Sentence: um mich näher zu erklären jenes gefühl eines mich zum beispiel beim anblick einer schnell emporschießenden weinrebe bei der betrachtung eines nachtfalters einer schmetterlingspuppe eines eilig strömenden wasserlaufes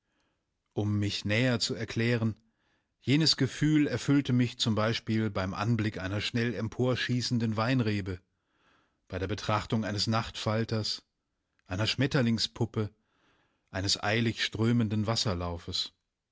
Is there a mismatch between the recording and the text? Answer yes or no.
yes